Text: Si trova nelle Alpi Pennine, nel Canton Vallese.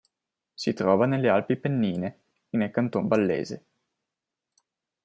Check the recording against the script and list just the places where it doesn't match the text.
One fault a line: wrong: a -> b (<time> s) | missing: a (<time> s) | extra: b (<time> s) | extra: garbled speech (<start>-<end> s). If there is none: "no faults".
no faults